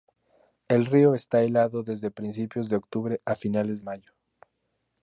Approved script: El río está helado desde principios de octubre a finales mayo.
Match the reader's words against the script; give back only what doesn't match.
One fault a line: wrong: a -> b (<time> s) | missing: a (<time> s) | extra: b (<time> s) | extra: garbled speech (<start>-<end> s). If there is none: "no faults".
no faults